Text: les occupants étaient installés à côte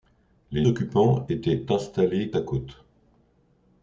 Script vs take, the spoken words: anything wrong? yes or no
no